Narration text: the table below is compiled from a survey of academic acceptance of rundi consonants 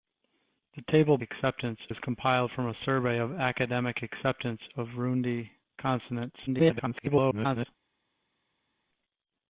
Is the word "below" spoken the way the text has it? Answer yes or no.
no